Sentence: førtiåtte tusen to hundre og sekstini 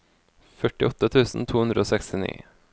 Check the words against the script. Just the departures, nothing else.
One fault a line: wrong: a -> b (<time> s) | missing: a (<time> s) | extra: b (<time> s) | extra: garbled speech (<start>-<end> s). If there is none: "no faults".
no faults